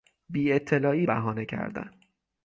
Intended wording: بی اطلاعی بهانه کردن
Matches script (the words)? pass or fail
pass